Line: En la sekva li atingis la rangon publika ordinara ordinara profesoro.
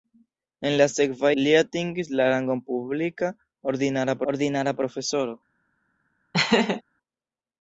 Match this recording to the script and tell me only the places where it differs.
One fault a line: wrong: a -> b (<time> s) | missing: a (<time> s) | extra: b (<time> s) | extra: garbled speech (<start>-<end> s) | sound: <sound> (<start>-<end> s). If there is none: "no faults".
sound: laugh (6.3-6.8 s)